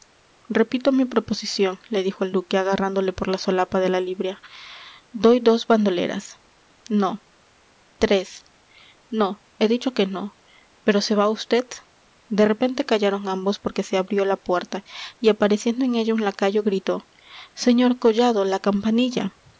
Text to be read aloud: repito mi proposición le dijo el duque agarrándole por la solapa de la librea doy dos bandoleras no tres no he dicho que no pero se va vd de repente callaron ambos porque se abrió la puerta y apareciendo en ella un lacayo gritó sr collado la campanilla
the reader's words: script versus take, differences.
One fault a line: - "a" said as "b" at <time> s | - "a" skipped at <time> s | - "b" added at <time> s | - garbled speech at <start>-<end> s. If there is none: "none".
none